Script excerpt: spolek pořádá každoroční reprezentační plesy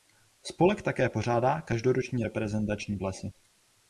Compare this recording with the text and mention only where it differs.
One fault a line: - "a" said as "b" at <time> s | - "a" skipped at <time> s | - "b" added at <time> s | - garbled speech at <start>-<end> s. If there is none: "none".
- "také" added at 0.8 s